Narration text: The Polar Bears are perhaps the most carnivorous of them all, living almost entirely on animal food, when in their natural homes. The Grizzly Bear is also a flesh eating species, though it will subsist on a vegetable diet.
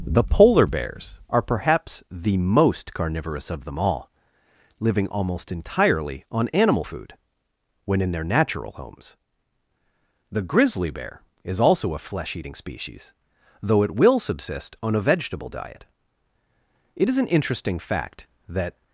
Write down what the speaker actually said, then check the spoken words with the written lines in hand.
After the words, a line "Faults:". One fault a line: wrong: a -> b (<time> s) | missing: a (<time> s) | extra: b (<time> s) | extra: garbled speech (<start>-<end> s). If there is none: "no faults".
The Polar Bears are perhaps the most carnivorous of them all, living almost entirely on animal food, when in their natural homes. The Grizzly Bear is also a flesh eating species, though it will subsist on a vegetable diet. It is an interesting fact that
Faults:
extra: It is an interesting fact that (17.0 s)